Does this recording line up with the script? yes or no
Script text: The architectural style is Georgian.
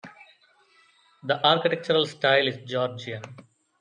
yes